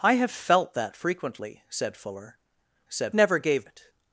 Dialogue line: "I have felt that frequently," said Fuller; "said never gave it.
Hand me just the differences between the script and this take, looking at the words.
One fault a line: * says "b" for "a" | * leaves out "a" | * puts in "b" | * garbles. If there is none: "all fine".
all fine